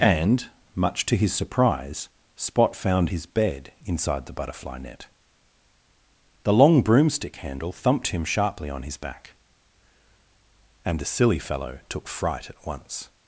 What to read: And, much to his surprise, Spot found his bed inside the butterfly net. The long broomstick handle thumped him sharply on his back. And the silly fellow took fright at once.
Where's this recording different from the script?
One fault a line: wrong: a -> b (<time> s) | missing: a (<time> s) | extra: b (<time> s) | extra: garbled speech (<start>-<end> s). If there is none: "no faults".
no faults